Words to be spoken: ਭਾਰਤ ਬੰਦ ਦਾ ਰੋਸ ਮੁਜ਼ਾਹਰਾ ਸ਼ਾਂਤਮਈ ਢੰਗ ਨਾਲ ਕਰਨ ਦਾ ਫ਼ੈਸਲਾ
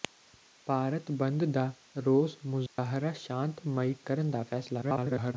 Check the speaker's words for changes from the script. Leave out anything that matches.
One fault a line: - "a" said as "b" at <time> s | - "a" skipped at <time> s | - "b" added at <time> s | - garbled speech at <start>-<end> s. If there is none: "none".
- "ਢੰਗ ਨਾਲ" skipped at 3.9 s
- garbled speech at 4.8-5.3 s